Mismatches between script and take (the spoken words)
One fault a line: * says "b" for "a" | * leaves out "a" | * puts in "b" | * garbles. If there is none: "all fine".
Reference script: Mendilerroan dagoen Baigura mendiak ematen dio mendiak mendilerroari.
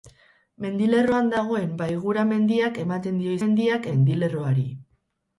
all fine